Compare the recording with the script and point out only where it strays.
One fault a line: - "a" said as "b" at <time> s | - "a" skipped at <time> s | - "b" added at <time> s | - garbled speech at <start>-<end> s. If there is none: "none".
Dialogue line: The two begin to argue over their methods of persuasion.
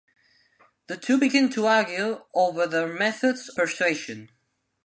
- "of" skipped at 3.5 s